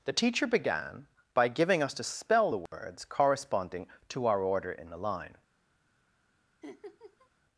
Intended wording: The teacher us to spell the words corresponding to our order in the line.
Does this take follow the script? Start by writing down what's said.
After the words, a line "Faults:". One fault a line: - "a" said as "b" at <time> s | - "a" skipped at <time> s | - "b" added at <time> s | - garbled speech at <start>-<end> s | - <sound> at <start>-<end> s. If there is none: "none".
The teacher began by giving us to spell the words corresponding to our order in the line.
Faults:
- "began by giving" added at 0.5 s
- dropout at 2.7-2.7 s
- laugh at 6.6-7.3 s